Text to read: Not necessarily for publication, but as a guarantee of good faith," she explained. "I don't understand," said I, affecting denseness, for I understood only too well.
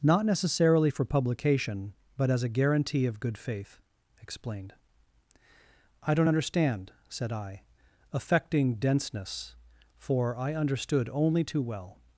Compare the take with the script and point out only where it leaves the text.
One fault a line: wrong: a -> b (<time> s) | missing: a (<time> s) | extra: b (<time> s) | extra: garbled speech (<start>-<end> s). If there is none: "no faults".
missing: she (3.8 s)